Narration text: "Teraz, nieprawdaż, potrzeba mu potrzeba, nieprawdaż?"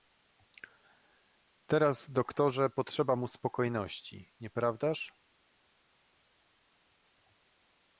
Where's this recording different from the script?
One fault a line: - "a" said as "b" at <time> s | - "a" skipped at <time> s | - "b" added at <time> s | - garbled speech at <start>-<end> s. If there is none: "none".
- "nieprawdaż" said as "doktorze" at 2.1 s
- "potrzeba" said as "spokojności" at 3.3 s